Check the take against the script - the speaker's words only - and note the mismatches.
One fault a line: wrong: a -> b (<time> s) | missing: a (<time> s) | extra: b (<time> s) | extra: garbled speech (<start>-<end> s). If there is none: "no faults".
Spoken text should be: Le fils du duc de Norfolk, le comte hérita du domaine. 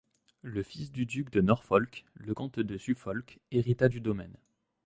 extra: de Suffolk (2.6 s)